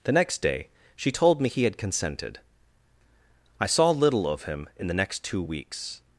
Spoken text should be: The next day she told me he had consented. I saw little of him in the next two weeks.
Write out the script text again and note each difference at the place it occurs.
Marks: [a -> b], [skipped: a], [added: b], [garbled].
The next day she told me he had consented. I saw little of him in the next two weeks.